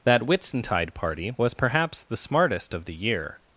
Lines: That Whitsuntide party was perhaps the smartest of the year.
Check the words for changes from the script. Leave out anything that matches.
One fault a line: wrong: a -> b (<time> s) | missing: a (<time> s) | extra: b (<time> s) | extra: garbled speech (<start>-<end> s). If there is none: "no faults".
no faults